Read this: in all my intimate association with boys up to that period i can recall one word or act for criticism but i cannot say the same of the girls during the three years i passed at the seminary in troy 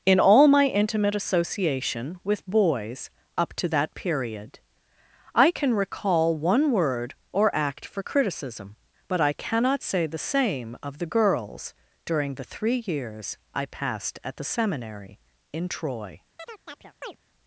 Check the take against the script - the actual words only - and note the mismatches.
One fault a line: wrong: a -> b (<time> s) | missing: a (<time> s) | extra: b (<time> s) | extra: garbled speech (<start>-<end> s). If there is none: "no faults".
no faults